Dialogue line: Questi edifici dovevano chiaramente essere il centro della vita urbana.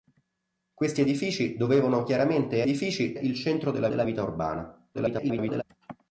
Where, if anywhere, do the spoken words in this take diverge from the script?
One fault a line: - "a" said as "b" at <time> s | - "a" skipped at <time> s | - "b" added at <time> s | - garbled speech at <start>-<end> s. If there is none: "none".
- "essere" said as "edifici" at 2.6 s
- "della" added at 3.9 s
- garbled speech at 4.9-5.6 s